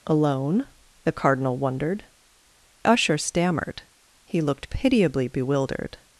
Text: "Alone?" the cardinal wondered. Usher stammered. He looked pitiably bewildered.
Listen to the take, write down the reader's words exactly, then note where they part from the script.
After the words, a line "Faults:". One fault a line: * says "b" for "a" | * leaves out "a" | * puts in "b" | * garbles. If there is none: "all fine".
"Alone?" the cardinal wondered. Usher stammered. He looked pitiably bewildered.
Faults:
all fine